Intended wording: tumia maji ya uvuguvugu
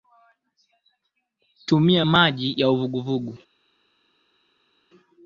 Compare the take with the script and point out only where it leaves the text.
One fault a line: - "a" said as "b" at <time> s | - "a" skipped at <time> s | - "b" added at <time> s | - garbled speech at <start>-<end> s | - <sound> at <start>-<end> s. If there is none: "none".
none